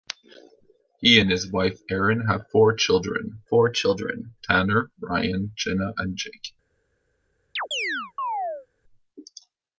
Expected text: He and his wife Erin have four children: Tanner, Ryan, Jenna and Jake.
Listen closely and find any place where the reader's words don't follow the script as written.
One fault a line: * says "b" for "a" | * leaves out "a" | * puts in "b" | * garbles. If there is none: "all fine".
* puts in "four children"